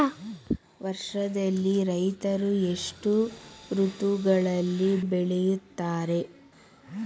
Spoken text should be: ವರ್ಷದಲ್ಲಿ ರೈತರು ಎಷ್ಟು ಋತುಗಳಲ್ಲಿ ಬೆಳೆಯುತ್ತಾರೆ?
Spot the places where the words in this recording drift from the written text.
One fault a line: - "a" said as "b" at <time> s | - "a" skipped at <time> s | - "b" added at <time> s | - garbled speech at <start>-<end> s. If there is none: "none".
none